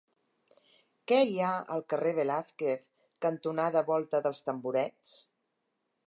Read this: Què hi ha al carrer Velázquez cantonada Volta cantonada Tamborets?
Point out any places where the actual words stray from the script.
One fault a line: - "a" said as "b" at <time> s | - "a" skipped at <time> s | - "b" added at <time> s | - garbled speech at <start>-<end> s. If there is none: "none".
- "cantonada" said as "dels" at 4.3 s